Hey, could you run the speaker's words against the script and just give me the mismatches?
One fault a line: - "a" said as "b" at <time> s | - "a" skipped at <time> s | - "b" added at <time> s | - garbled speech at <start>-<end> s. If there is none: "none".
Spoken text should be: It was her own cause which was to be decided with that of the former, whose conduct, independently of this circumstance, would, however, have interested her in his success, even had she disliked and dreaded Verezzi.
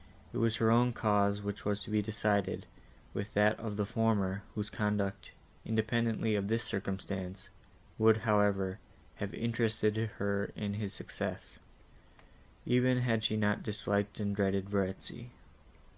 - "not" added at 13.4 s